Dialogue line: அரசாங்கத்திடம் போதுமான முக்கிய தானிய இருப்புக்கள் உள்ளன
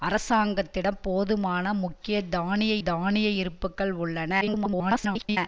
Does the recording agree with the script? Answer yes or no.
no